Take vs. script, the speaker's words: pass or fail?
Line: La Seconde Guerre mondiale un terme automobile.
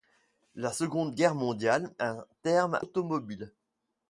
pass